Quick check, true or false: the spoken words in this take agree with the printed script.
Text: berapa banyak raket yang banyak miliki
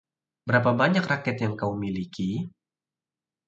false